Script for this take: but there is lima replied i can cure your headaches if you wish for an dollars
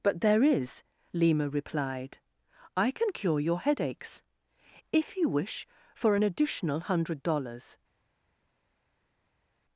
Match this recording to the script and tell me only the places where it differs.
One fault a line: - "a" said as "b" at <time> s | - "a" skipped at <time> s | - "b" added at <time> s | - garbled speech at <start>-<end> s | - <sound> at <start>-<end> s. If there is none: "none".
- "additional hundred" added at 6.2 s